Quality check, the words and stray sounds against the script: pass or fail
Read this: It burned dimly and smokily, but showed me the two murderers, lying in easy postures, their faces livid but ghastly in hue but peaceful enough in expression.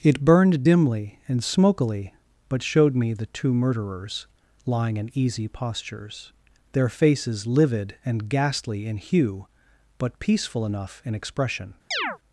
fail